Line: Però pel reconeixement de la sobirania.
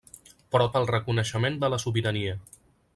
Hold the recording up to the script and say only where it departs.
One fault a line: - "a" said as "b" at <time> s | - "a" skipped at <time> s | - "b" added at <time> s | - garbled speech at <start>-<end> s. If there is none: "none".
none